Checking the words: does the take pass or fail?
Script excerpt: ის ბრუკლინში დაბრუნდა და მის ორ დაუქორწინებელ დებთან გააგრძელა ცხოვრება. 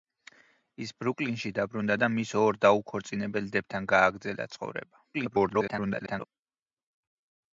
fail